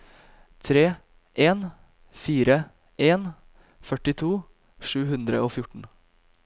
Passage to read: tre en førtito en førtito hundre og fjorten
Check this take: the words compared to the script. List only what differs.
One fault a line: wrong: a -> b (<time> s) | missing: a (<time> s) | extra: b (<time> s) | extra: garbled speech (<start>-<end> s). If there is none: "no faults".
wrong: førtito -> fire (2.2 s)
extra: sju (4.9 s)